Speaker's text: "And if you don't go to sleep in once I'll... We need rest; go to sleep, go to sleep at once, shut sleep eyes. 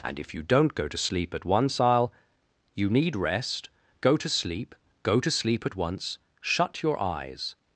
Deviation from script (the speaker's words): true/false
true